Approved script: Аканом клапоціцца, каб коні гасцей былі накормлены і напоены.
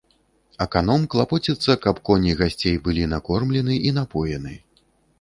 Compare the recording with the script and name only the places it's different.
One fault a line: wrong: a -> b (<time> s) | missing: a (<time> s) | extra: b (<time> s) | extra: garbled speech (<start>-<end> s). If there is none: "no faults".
no faults